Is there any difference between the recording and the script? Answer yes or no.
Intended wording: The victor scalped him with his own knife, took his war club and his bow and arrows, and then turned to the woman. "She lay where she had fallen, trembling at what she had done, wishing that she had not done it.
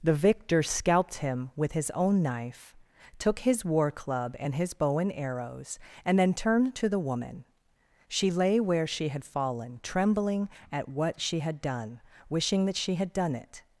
yes